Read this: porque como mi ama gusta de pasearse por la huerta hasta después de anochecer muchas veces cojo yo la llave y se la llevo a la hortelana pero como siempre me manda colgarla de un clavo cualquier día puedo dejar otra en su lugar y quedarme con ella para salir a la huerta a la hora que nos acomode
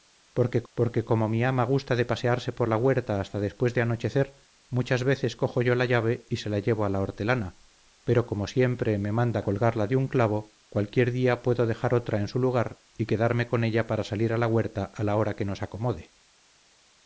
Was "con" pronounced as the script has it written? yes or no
yes